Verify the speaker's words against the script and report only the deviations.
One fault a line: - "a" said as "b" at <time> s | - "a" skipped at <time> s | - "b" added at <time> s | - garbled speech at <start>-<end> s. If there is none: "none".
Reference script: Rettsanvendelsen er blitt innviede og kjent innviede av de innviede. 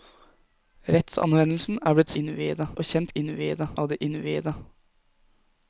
none